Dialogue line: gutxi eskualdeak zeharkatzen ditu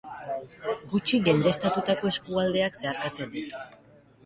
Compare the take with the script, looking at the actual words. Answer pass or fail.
fail